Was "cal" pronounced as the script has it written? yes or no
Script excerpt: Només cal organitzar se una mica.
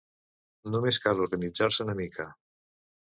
yes